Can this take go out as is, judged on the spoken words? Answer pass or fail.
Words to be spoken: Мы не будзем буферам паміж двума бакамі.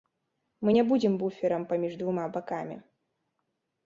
pass